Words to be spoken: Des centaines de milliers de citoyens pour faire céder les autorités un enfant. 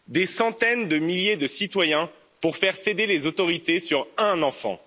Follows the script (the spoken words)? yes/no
no